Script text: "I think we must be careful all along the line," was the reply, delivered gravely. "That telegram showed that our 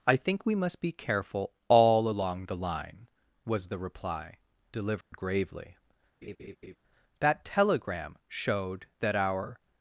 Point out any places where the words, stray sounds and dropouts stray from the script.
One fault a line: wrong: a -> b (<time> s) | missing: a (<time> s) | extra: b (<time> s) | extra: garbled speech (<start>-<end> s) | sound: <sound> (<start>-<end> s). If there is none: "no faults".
sound: dropout (5.0-5.1 s)
sound: laugh (6.2-6.8 s)